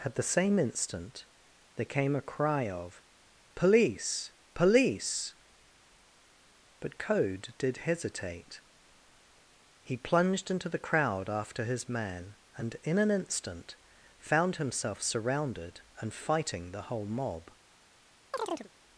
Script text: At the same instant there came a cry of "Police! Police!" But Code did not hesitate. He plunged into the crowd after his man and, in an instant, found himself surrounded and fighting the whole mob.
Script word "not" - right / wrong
wrong